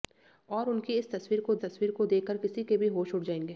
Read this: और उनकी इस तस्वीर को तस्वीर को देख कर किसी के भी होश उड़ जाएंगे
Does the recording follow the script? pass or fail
pass